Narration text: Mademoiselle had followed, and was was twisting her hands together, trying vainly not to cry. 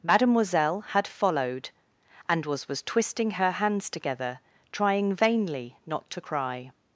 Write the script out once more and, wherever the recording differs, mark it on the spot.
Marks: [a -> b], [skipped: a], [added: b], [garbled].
Mademoiselle had followed, and was was twisting her hands together, trying vainly not to cry.